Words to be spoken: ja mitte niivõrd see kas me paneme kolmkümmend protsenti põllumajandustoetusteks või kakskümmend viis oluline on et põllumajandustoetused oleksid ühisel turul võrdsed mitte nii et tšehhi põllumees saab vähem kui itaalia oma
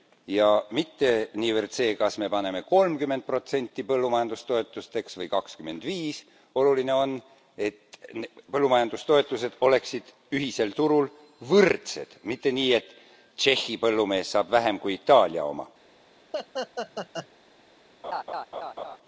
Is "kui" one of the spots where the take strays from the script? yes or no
no